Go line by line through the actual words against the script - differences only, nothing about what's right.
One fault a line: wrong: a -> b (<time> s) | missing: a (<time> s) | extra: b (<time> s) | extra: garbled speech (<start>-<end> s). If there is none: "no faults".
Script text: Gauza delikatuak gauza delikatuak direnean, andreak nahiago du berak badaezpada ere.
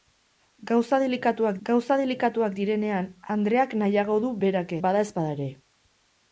no faults